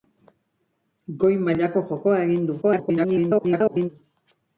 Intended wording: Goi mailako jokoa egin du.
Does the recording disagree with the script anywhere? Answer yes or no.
yes